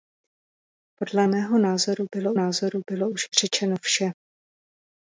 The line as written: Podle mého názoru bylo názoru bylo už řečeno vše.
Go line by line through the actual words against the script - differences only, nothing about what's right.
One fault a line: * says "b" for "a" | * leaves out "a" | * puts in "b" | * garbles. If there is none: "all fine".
all fine